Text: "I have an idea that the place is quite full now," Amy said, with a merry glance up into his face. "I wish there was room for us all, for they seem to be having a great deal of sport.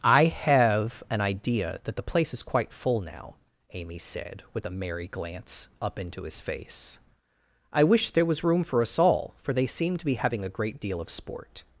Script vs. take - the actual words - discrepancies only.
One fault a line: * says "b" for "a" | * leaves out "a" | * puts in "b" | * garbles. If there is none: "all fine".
all fine